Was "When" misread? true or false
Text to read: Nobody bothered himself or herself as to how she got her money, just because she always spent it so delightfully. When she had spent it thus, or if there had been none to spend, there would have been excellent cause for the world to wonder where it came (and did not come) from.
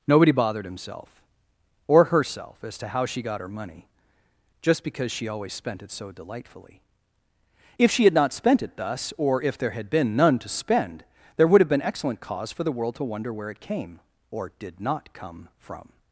true